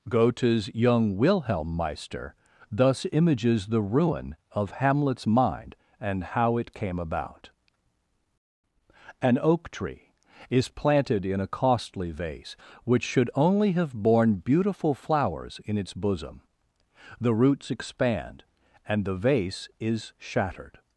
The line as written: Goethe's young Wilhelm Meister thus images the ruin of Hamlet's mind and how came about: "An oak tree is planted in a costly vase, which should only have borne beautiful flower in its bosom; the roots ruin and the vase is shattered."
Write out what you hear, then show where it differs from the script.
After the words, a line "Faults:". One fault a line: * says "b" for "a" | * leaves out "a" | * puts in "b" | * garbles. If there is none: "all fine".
Goethe's young Wilhelm Meister thus images the ruin of Hamlet's mind and how it came about: "An oak tree is planted in a costly vase, which should only have borne beautiful flowers in its bosom; the roots expand and the vase is shattered."
Faults:
* puts in "it"
* says "flowers" for "flower"
* says "expand" for "ruin"